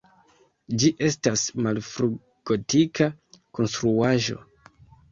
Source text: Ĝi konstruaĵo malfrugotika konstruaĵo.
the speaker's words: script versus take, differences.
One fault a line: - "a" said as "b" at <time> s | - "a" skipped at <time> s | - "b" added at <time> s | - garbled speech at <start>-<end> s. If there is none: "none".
- "konstruaĵo" said as "estas" at 1.1 s